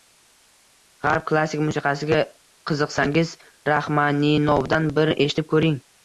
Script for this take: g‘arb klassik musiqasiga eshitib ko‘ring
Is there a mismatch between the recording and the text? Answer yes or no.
yes